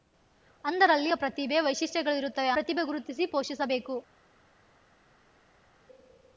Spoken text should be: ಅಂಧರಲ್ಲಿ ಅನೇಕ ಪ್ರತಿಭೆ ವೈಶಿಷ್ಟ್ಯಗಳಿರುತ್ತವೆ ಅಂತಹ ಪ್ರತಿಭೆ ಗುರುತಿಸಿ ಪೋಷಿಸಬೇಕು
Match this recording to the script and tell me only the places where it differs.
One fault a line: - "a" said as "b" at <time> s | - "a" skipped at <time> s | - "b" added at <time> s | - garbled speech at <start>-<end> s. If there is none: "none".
- "ಅನೇಕ" skipped at 1.1 s
- "ಅಂತಹ" skipped at 2.5 s